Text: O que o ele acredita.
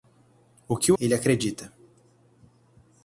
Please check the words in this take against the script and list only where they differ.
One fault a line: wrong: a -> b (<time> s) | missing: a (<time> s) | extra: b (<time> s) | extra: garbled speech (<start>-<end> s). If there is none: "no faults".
no faults